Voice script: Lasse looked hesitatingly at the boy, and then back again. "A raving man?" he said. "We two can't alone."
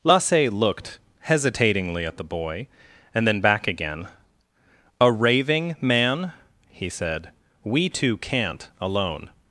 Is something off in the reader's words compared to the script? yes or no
no